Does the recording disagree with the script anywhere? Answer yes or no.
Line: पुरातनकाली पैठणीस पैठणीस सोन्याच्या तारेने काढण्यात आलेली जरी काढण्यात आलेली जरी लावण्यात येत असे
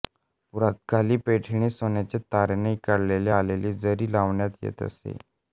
yes